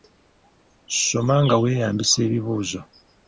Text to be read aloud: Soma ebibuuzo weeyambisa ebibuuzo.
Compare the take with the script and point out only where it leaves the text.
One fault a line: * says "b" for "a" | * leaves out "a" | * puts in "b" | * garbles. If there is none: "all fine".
* says "nga" for "ebibuuzo"